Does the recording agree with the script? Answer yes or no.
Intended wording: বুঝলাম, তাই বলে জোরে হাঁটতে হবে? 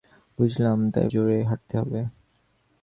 no